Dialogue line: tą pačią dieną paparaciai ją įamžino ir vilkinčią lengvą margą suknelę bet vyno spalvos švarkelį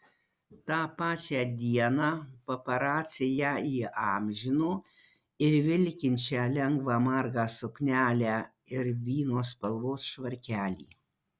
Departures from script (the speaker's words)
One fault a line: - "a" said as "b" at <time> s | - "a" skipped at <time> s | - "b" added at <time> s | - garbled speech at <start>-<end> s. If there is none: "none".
- "bet" said as "ir" at 8.8 s